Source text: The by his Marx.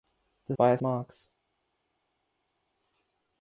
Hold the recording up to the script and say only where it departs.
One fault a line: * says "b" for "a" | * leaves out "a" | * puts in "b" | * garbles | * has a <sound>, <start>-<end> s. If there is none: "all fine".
all fine